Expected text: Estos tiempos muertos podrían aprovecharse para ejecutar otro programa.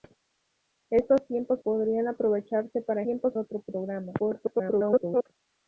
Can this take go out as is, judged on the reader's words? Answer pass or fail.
fail